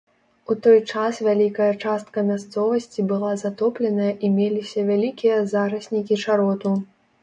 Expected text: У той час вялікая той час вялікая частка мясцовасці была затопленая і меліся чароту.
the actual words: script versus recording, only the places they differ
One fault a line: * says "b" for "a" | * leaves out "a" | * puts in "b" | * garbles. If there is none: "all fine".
* leaves out "той час вялікая"
* puts in "вялікія зараснікі"